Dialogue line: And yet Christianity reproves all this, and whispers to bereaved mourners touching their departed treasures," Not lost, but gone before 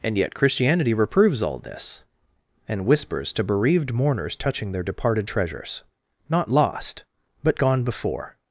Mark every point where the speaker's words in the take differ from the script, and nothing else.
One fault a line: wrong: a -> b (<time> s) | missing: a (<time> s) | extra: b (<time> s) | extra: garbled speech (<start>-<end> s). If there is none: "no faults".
no faults